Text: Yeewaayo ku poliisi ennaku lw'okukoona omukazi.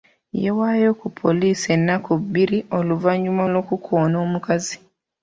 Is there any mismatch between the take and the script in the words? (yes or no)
yes